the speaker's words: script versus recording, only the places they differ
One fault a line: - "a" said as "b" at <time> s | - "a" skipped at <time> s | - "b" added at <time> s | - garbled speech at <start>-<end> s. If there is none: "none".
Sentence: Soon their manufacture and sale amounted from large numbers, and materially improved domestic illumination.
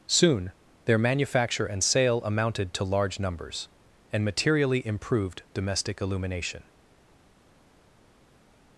- "from" said as "to" at 2.7 s